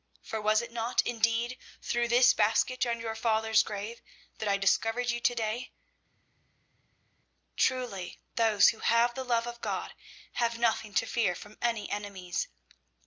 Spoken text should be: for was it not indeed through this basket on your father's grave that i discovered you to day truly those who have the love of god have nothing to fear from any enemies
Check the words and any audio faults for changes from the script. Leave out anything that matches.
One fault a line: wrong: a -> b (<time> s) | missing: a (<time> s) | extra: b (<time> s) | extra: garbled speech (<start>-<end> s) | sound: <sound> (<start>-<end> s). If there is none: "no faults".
no faults